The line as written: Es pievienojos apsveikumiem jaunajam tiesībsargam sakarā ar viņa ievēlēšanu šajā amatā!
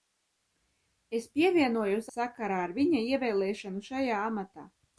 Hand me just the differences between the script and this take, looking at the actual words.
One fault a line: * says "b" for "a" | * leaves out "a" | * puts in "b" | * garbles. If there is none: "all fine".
* leaves out "apsveikumiem jaunajam tiesībsargam"